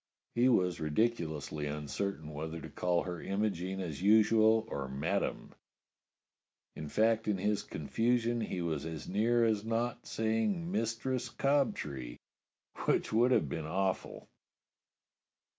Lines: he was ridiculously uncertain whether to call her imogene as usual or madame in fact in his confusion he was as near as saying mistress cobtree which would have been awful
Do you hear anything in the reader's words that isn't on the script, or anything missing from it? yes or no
yes